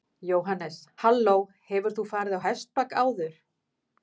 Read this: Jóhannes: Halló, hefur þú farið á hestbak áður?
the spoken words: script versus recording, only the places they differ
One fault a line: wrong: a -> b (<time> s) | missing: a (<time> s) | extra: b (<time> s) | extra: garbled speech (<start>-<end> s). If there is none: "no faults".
no faults